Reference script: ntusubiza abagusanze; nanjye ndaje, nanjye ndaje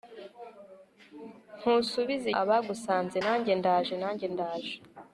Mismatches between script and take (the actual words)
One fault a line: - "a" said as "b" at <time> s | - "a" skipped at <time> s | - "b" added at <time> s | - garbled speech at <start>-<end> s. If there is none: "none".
none